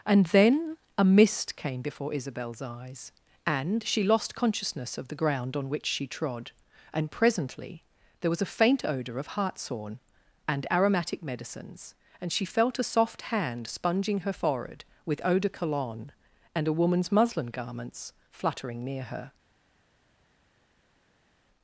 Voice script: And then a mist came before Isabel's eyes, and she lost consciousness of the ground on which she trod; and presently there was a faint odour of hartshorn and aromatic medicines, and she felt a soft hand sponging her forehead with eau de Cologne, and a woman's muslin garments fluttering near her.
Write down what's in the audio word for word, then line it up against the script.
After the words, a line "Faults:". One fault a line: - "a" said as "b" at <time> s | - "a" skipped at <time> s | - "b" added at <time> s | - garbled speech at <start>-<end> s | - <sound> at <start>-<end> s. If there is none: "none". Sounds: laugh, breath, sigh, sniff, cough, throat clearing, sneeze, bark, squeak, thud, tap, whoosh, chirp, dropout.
And then a mist came before Isabel's eyes, and she lost consciousness of the ground on which she trod; and presently there was a faint odour of hartshorn and aromatic medicines, and she felt a soft hand sponging her forehead with eau de Cologne, and a woman's muslin garments fluttering near her.
Faults:
none